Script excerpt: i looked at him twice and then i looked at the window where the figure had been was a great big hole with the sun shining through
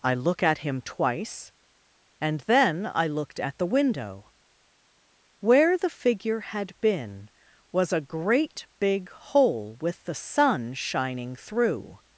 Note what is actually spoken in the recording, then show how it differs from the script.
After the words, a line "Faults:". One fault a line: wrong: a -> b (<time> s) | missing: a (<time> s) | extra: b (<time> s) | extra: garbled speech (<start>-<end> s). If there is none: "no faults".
i look at him twice and then i looked at the window where the figure had been was a great big hole with the sun shining through
Faults:
wrong: looked -> look (0.1 s)